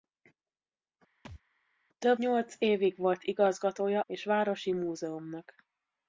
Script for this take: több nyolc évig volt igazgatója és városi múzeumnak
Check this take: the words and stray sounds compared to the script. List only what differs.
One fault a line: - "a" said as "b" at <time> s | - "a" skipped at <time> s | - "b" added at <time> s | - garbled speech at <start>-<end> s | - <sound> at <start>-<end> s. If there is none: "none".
- thud at 1.2-1.4 s